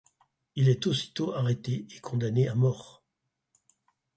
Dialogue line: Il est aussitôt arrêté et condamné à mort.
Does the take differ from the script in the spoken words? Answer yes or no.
no